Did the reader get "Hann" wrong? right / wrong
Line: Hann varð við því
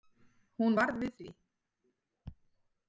wrong